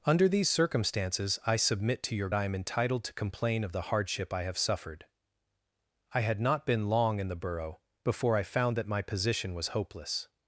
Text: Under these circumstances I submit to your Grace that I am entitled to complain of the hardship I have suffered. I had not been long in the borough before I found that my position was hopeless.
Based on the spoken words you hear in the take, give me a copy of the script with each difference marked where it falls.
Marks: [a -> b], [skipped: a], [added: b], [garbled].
Under these circumstances I submit to your [skipped: Grace that] I am entitled to complain of the hardship I have suffered. I had not been long in the borough before I found that my position was hopeless.